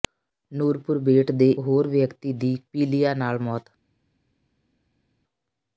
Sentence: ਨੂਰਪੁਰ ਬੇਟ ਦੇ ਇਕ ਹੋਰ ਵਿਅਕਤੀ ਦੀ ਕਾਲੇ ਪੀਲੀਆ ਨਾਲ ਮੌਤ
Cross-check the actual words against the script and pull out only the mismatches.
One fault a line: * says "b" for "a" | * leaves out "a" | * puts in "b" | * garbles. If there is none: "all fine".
* leaves out "ਇਕ"
* leaves out "ਕਾਲੇ"